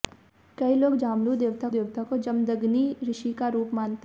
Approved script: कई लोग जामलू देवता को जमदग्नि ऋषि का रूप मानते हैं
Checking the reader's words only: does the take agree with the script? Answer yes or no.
no